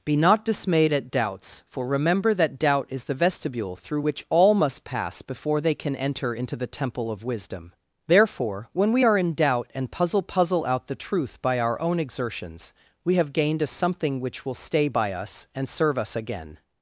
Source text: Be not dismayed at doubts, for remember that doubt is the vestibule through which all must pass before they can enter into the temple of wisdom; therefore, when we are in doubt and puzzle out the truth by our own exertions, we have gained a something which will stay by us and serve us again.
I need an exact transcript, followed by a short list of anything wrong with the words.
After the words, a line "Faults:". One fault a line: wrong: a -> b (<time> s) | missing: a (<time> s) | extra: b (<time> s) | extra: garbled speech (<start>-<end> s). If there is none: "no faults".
Be not dismayed at doubts, for remember that doubt is the vestibule through which all must pass before they can enter into the temple of wisdom; therefore, when we are in doubt and puzzle puzzle out the truth by our own exertions, we have gained a something which will stay by us and serve us again.
Faults:
extra: puzzle (10.2 s)